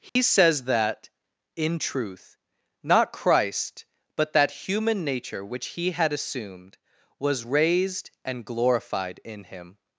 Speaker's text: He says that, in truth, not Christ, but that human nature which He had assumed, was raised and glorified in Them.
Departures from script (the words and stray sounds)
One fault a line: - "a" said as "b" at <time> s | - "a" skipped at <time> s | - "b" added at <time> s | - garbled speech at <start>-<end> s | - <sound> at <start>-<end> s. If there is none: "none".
- dropout at 0.1-0.2 s
- "Them" said as "Him" at 9.4 s